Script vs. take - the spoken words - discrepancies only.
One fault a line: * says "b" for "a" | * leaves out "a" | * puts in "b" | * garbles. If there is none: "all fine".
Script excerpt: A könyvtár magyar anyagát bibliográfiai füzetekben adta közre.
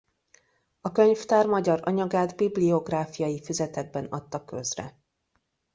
all fine